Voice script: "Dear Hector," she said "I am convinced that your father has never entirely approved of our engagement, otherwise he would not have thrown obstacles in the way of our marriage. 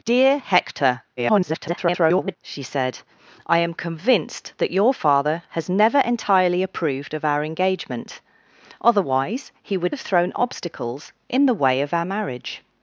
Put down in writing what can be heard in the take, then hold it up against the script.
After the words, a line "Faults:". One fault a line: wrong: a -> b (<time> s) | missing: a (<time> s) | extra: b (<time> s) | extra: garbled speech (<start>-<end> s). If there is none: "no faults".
"Dear Hector," [garbled] she said "I am convinced that your father has never entirely approved of our engagement, otherwise he would have thrown obstacles in the way of our marriage.
Faults:
extra: garbled speech (1.2-2.4 s)
missing: not (10.0 s)